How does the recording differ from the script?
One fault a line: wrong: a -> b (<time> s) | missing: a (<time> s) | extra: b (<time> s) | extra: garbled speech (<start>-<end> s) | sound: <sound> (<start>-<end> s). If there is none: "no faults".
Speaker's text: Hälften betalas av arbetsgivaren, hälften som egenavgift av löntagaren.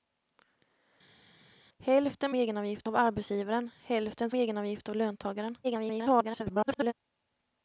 wrong: betalas -> egenavgift (2.3 s)
missing: som (4.3 s)
extra: garbled speech (5.6-6.9 s)